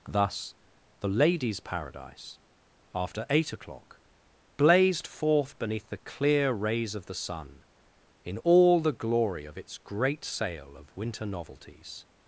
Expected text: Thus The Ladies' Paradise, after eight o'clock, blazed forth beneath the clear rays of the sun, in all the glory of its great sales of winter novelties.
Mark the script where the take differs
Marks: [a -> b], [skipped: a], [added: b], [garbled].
Thus The Ladies' Paradise, after eight o'clock, blazed forth beneath the clear rays of the sun, in all the glory of its great [sales -> sale] of winter novelties.